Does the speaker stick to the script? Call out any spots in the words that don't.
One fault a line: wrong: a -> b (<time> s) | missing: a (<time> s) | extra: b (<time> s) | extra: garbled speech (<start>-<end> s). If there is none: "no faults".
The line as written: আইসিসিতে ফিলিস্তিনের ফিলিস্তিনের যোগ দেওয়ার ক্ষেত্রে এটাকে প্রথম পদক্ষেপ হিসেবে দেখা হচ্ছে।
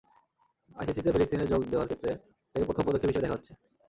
missing: ফিলিস্তিনের (1.5 s)